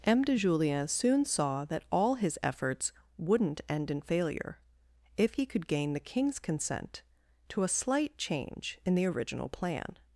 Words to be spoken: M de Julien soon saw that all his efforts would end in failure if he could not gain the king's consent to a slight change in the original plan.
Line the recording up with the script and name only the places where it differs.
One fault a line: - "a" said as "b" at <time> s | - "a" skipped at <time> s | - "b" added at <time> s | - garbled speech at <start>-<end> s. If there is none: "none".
- "would" said as "wouldn't" at 3.2 s
- "not" skipped at 5.7 s